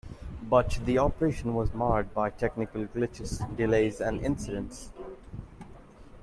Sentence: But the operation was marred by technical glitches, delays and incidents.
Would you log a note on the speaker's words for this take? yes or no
no